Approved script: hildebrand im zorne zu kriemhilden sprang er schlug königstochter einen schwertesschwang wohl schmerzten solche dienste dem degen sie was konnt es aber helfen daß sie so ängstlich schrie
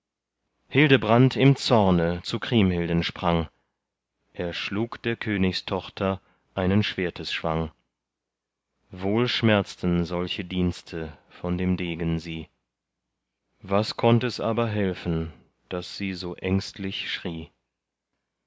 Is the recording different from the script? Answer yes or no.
yes